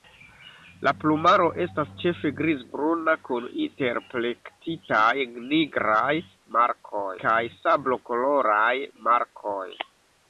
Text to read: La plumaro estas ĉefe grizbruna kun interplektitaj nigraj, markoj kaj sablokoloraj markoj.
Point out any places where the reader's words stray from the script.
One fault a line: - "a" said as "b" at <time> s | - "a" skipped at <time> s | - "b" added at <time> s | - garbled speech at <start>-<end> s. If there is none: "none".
none